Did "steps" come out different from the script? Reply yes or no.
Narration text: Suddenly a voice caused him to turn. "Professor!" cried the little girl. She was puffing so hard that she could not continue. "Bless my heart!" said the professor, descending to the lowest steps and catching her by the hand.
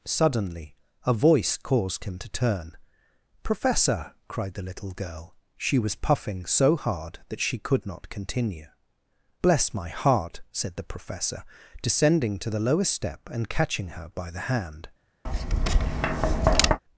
yes